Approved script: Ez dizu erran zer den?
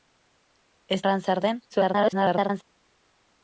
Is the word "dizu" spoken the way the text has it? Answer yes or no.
no